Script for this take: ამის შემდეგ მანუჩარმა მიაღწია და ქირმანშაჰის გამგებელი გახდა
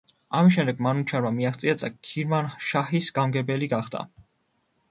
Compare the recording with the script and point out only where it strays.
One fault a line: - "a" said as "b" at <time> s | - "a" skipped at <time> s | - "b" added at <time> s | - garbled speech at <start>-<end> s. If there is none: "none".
none